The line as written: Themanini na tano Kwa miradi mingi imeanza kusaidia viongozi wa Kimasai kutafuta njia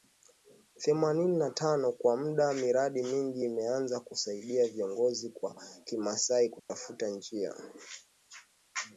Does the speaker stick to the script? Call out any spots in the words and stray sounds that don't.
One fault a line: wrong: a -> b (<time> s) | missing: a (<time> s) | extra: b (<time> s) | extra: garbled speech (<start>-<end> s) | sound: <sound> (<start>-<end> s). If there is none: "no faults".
extra: muda (2.2 s)
sound: dropout (6.6-6.7 s)